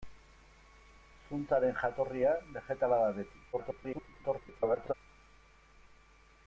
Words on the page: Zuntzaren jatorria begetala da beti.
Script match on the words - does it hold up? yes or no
no